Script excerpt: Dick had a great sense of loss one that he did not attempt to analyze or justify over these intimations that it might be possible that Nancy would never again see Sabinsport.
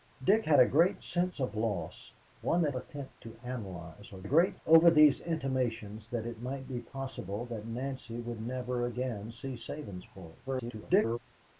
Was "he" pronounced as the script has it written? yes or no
no